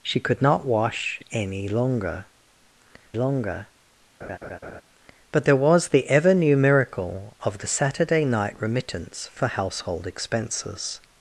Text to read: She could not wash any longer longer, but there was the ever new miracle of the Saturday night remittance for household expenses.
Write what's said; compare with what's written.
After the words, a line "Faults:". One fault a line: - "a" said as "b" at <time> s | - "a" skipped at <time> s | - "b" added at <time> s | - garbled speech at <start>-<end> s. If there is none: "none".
She could not wash any longer longer, but there was the ever new miracle of the Saturday night remittance for household expenses.
Faults:
none